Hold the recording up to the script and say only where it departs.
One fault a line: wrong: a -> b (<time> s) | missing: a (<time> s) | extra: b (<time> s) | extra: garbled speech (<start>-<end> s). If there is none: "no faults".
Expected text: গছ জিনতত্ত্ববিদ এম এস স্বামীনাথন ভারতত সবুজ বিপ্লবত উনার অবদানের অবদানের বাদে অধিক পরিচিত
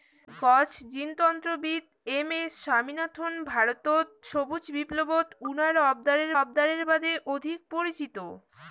no faults